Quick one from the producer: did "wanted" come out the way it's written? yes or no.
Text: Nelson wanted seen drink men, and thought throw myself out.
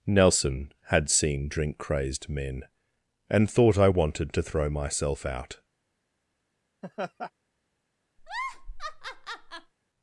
no